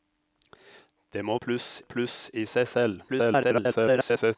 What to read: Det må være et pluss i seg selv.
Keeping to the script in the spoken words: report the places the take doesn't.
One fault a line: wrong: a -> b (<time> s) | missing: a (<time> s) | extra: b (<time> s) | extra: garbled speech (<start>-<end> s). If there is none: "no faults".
wrong: være -> pluss (1.4 s)
extra: garbled speech (3.1-4.4 s)